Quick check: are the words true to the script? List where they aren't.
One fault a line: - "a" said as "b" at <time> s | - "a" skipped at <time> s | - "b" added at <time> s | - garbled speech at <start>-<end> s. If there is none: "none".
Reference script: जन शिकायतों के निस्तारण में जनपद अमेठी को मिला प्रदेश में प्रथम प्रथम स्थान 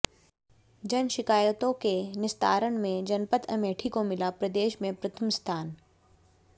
- "प्रथम" skipped at 5.3 s